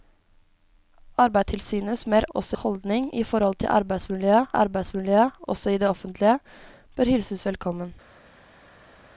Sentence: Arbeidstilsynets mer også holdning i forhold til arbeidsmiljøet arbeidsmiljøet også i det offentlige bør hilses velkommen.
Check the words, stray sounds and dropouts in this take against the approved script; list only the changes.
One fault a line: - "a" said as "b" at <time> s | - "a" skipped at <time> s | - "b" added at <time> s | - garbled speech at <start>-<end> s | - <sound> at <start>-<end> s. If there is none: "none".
none